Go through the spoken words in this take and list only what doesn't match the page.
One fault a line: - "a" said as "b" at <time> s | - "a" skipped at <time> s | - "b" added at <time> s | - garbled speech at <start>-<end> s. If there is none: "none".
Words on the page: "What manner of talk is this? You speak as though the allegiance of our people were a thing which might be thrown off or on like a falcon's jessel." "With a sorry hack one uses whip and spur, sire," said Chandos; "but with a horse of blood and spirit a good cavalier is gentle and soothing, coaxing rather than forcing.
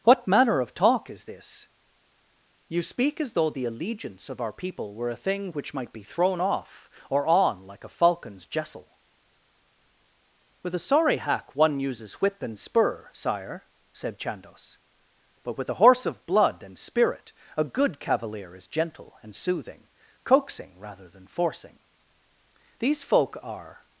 - "These folk are" added at 22.8 s